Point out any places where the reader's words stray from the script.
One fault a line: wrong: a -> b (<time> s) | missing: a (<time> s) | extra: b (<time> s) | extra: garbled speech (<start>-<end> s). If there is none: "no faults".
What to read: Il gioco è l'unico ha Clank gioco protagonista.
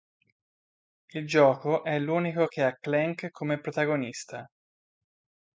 extra: che (2.5 s)
wrong: gioco -> come (3.3 s)